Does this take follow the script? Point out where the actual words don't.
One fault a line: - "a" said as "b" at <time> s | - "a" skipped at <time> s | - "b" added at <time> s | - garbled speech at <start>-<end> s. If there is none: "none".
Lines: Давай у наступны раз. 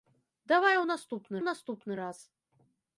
- "наступны" added at 1.4 s